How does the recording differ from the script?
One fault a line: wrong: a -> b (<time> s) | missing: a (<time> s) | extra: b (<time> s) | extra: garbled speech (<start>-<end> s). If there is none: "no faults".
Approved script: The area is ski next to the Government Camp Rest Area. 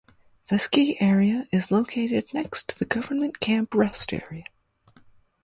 extra: ski (0.5 s)
wrong: ski -> located (1.7 s)